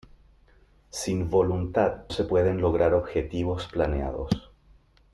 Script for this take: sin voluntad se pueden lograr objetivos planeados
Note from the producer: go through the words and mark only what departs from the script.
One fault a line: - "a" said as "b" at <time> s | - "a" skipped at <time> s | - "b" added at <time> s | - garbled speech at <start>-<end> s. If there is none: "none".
none